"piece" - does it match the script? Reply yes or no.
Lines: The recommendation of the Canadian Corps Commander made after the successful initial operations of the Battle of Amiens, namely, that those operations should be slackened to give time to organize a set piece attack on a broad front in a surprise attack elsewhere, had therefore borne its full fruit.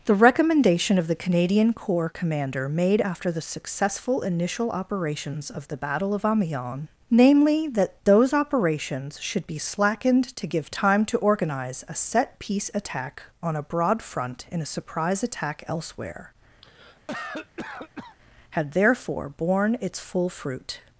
yes